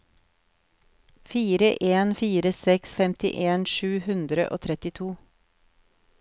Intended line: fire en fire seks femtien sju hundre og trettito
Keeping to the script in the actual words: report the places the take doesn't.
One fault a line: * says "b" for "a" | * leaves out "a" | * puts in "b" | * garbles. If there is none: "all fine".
all fine